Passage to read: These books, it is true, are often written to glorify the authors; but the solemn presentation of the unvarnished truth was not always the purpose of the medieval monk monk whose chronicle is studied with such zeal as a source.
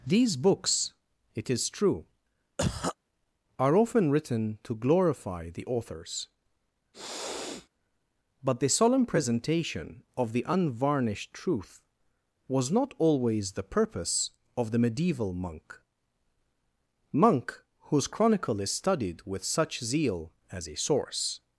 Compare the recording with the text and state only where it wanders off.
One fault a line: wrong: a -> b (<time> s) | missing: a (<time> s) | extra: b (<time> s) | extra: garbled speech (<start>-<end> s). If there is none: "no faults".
no faults